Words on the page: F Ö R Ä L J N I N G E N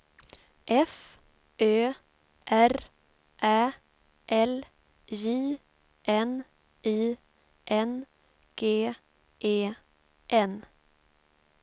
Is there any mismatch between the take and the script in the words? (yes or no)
no